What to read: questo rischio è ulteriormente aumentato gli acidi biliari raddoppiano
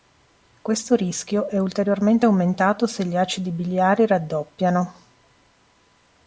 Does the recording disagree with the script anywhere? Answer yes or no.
yes